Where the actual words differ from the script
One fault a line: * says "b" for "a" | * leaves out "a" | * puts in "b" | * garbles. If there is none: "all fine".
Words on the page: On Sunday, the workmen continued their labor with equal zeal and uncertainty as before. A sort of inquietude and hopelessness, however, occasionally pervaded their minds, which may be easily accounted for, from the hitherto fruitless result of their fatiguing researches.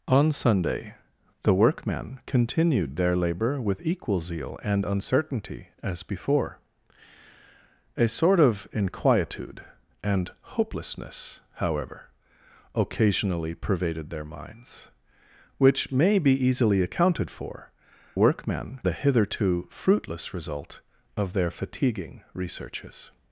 * says "workmen" for "from"